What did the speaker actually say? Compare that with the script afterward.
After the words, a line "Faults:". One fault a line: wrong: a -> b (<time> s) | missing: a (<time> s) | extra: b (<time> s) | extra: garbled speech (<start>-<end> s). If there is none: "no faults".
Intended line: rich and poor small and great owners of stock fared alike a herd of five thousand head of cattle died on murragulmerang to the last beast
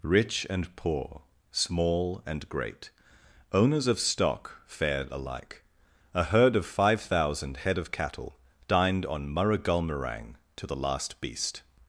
rich and poor small and great owners of stock fared alike a herd of five thousand head of cattle dined on murragulmerang to the last beast
Faults:
wrong: died -> dined (8.7 s)